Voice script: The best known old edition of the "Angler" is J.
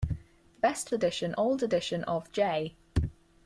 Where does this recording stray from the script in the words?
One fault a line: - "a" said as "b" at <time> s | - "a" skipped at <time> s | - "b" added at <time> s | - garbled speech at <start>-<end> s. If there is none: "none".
- "known" said as "edition" at 0.9 s
- "the Angler is" skipped at 2.3 s